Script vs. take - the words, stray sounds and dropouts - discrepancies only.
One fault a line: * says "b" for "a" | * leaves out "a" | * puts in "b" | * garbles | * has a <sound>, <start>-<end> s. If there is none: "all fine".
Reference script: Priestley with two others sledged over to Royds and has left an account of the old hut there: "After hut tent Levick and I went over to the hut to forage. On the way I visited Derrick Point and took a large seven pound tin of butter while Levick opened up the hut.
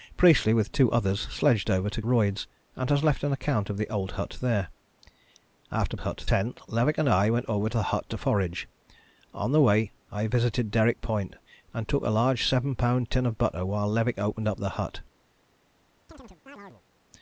* has a chirp, 16.1-16.8 s